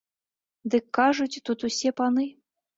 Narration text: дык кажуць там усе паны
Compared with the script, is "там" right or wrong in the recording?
wrong